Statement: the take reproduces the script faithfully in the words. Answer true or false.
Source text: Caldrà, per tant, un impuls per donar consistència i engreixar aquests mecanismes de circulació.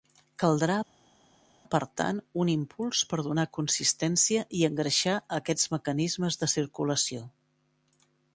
true